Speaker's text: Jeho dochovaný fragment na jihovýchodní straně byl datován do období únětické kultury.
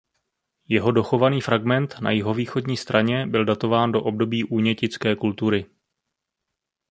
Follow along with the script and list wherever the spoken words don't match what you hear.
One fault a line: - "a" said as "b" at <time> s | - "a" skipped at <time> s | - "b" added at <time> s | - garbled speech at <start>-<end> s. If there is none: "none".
none